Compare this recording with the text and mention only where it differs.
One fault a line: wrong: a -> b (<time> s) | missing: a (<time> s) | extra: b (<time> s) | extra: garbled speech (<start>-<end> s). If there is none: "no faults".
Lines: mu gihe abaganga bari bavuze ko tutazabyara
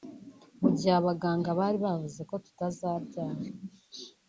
no faults